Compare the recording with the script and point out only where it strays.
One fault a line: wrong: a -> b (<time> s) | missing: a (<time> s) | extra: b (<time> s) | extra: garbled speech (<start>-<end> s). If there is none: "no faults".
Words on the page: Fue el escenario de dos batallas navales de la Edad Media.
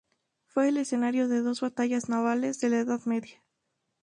no faults